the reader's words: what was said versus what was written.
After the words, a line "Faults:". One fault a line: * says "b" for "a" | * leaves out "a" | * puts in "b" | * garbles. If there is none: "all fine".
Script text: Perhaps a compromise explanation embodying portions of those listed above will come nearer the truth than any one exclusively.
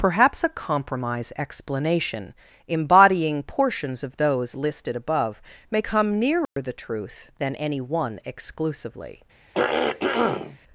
Perhaps a compromise explanation embodying portions of those listed above may come nearer the truth than any one exclusively.
Faults:
* says "may" for "will"